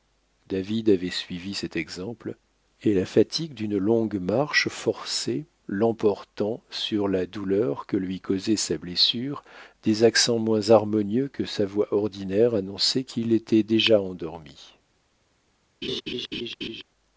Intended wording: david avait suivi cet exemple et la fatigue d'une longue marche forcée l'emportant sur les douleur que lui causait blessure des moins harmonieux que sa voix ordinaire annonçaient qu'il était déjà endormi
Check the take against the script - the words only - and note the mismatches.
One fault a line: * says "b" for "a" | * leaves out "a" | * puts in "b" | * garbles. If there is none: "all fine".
* says "la" for "les"
* puts in "sa"
* puts in "accents"